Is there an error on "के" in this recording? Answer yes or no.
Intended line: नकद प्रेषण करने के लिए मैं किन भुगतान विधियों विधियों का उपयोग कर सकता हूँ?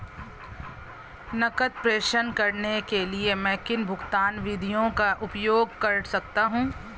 no